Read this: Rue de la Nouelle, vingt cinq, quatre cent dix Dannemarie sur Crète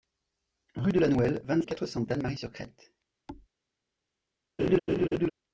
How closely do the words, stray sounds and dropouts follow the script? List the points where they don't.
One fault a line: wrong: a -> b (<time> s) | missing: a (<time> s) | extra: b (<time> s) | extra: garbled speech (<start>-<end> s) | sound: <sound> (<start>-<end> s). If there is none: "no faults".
missing: cinq (1.6 s)
missing: dix (2.0 s)
sound: thud (3.3-3.5 s)
sound: laugh (4.6-5.3 s)